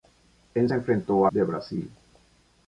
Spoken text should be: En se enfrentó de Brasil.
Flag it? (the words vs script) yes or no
no